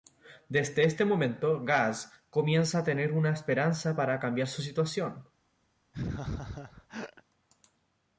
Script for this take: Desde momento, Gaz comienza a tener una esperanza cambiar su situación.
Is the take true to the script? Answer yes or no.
no